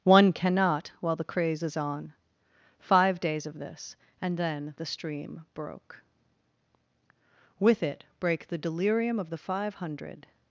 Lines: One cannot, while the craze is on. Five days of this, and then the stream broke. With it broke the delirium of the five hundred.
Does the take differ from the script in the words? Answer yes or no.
yes